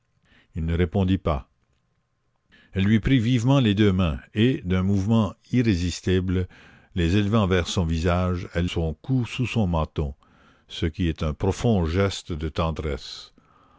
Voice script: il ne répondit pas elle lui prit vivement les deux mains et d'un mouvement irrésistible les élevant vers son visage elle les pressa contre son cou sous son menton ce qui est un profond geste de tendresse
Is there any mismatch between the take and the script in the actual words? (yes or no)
yes